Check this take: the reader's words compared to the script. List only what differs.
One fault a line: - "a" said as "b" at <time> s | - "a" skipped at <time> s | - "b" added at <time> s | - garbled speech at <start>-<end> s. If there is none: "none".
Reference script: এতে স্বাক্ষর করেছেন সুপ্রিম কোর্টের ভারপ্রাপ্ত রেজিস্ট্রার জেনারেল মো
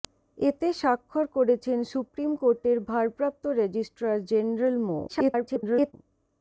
- garbled speech at 5.1-5.9 s